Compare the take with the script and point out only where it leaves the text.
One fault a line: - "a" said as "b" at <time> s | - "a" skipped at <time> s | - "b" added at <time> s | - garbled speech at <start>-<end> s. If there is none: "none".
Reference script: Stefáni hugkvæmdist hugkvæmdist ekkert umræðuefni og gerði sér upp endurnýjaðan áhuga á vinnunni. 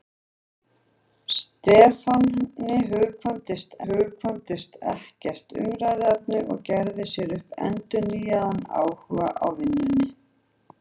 none